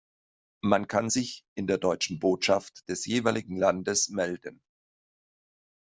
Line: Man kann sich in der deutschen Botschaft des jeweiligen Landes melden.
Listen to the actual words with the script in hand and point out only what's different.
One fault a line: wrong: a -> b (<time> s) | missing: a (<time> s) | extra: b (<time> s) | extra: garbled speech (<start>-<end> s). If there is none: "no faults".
no faults